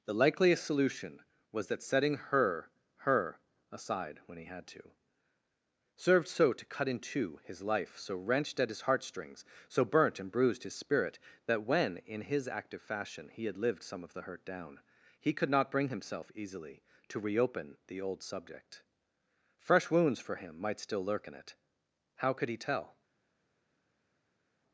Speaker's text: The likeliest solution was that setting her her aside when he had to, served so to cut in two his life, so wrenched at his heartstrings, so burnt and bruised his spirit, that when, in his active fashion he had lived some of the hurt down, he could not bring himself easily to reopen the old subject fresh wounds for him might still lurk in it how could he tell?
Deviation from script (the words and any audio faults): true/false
false